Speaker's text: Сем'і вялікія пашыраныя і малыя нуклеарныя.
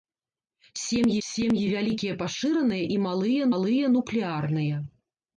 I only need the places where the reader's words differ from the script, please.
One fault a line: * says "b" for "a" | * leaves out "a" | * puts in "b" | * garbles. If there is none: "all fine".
* puts in "сем'і"
* puts in "малыя"